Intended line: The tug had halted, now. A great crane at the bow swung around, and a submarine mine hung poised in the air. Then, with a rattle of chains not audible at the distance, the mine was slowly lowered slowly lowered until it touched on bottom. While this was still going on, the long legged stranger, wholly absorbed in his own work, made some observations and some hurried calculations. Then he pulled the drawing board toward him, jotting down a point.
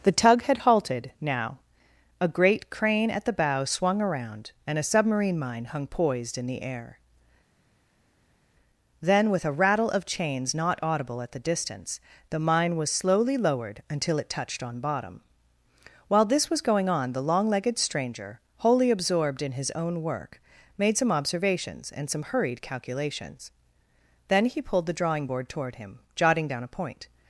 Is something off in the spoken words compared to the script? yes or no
yes